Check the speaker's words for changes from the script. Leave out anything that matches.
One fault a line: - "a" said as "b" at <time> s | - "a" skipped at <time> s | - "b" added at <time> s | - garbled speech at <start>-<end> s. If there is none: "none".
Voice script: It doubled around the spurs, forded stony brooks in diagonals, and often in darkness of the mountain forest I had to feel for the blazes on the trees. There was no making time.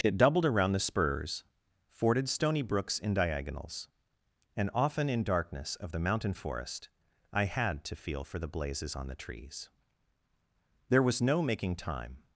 none